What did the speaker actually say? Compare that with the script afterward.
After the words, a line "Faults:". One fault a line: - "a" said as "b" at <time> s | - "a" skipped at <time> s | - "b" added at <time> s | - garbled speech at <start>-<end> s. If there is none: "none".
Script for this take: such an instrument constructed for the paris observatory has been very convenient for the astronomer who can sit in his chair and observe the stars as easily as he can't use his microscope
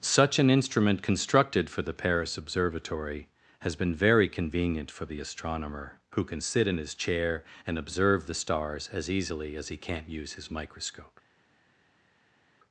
such an instrument constructed for the paris observatory has been very convenient for the astronomer who can sit in his chair and observe the stars as easily as he can't use his microscope
Faults:
none